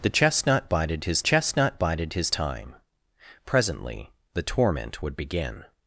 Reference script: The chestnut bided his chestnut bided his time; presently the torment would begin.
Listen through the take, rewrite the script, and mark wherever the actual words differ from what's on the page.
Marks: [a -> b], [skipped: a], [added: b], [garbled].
The chestnut bided his chestnut bided his time; presently the torment would begin.